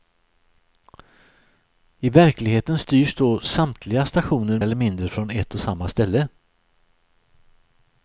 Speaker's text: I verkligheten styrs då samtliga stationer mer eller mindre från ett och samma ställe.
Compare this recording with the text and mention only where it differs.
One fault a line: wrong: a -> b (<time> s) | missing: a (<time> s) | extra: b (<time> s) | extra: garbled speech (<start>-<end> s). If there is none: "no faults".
missing: mer (4.6 s)